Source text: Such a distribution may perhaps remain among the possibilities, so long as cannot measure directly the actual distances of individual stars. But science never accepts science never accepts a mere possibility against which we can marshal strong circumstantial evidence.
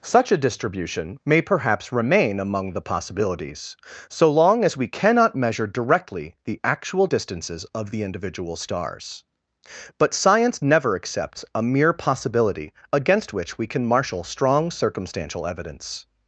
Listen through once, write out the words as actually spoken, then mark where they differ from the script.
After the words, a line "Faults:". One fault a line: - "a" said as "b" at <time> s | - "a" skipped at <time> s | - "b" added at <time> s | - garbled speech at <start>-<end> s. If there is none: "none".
Such a distribution may perhaps remain among the possibilities, so long as we cannot measure directly the actual distances of the individual stars. But science never accepts a mere possibility against which we can marshal strong circumstantial evidence.
Faults:
- "we" added at 4.8 s
- "the" added at 7.9 s
- "science never accepts" skipped at 11.4 s